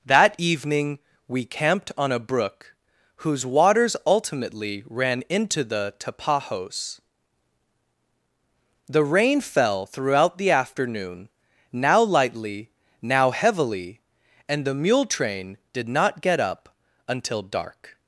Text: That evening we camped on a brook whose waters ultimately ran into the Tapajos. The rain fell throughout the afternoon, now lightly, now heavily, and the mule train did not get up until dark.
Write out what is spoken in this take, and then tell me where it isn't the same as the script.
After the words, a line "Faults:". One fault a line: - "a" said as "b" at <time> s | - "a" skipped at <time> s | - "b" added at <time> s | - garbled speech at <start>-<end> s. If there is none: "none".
That evening we camped on a brook whose waters ultimately ran into the Tapajos. The rain fell throughout the afternoon, now lightly, now heavily, and the mule train did not get up until dark.
Faults:
none